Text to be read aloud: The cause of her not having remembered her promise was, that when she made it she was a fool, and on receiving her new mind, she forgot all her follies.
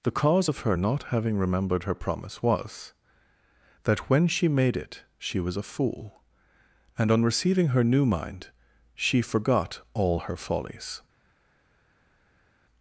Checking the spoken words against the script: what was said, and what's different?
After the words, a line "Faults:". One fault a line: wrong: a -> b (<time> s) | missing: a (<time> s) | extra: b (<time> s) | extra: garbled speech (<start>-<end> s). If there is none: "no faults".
The cause of her not having remembered her promise was, that when she made it she was a fool, and on receiving her new mind, she forgot all her follies.
Faults:
no faults